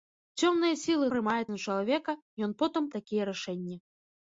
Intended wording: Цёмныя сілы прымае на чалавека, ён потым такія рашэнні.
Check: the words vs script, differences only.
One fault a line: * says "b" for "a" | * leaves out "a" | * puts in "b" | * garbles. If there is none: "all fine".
all fine